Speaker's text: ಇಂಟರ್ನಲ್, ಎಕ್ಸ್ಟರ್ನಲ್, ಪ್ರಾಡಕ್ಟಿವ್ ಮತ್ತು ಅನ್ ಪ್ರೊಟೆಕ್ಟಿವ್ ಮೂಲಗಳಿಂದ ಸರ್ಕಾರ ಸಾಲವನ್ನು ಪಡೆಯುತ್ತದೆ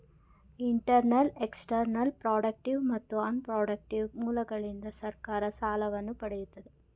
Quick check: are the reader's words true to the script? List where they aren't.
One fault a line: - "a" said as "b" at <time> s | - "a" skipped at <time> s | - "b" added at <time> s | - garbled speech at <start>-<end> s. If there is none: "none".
none